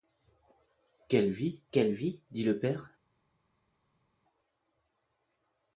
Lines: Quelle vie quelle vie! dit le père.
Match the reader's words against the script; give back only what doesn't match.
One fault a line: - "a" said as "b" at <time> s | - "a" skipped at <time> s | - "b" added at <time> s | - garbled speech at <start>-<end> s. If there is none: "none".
none